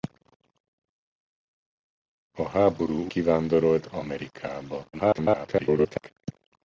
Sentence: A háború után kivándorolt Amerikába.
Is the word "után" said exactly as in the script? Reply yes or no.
no